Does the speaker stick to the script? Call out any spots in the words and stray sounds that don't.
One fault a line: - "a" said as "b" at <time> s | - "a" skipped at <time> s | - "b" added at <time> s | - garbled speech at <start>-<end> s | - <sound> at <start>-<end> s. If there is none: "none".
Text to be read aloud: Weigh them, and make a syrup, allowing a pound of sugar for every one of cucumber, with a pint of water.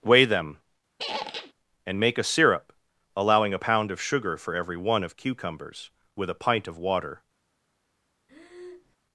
- squeak at 1.0-1.5 s
- "cucumber" said as "cucumbers" at 5.2 s
- breath at 8.3-9.0 s